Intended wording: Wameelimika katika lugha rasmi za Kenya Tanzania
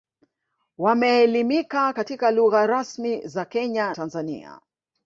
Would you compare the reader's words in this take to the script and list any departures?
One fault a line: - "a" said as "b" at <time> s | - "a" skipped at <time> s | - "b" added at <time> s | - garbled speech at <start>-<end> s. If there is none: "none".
none